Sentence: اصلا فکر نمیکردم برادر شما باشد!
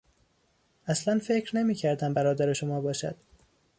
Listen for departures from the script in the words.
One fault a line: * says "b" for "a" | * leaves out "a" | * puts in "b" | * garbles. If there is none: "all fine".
all fine